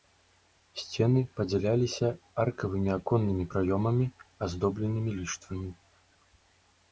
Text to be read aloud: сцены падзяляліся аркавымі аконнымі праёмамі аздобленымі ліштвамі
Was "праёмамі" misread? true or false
false